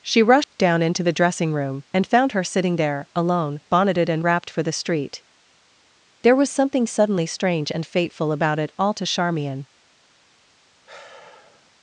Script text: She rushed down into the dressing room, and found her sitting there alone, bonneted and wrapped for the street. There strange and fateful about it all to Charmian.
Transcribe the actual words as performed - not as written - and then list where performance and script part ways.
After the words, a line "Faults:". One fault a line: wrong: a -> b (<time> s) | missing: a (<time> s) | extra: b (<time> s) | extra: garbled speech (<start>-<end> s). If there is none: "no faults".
She rushed down into the dressing room, and found her sitting there alone, bonneted and wrapped for the street. There was something suddenly strange and fateful about it all to Charmian.
Faults:
extra: was something suddenly (6.3 s)